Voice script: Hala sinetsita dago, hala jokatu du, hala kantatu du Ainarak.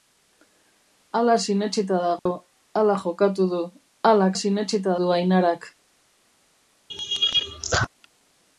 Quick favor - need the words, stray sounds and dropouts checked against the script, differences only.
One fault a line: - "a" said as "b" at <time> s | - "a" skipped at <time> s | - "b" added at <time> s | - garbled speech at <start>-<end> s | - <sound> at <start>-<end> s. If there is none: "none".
- dropout at 2.2-2.3 s
- "kantatu" said as "sinetsita" at 4.4 s
- laugh at 6.9-7.9 s